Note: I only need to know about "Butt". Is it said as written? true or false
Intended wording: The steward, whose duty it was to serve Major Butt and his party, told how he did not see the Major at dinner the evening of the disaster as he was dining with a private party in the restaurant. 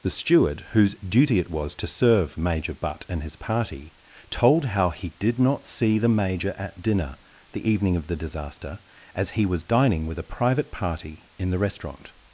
true